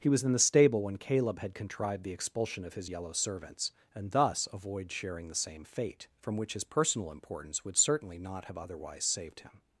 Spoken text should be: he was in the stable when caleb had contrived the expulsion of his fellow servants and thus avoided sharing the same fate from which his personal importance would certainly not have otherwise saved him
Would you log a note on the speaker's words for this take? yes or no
yes